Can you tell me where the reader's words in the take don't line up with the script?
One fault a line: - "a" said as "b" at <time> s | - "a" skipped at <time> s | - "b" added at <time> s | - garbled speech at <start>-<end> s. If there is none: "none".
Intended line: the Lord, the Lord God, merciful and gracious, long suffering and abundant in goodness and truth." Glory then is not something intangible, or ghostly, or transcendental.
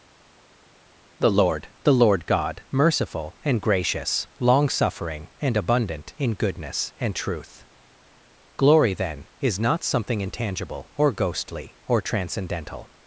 none